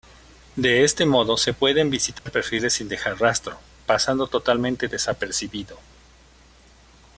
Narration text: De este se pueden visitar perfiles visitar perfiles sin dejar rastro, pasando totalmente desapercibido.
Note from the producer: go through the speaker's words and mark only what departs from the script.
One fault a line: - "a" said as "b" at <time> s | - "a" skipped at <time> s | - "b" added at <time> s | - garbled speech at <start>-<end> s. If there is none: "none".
- "modo" added at 1.1 s
- "visitar perfiles" skipped at 2.7 s